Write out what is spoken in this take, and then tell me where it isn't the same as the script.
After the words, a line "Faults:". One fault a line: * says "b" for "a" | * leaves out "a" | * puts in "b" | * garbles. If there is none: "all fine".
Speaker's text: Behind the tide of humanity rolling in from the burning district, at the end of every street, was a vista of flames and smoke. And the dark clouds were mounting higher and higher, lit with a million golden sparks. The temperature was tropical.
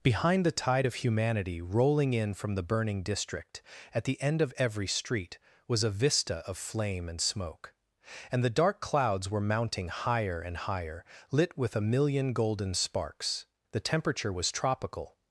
Behind the tide of humanity rolling in from the burning district, at the end of every street, was a vista of flame and smoke. And the dark clouds were mounting higher and higher, lit with a million golden sparks. The temperature was tropical.
Faults:
* says "flame" for "flames"